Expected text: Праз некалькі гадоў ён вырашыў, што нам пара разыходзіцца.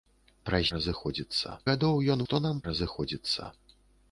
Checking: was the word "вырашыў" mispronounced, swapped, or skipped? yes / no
yes